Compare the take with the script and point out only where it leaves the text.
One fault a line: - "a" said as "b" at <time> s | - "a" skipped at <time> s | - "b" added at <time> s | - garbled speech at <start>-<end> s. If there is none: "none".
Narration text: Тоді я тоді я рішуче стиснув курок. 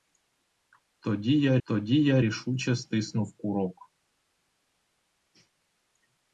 none